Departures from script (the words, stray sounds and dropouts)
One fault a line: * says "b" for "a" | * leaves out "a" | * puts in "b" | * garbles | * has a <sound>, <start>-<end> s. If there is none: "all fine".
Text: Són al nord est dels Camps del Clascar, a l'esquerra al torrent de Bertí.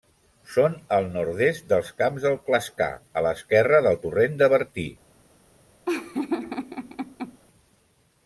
* says "del" for "al"
* has a laugh, 5.9-7.4 s